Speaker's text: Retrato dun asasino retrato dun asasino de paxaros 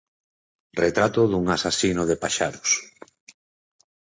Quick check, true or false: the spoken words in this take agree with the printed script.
false